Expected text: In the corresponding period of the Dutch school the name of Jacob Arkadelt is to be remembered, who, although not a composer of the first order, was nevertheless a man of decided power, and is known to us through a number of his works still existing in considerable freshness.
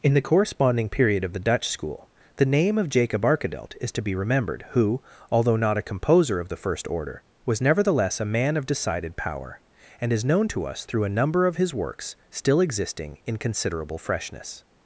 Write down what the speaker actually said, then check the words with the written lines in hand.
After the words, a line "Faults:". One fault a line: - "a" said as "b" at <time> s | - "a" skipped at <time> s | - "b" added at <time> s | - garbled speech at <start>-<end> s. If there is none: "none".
In the corresponding period of the Dutch school the name of Jacob Arkadelt is to be remembered, who, although not a composer of the first order, was nevertheless a man of decided power, and is known to us through a number of his works still existing in considerable freshness.
Faults:
none